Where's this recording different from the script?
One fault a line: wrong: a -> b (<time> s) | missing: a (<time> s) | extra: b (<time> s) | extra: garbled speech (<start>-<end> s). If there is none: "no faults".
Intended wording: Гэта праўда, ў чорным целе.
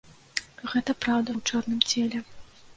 no faults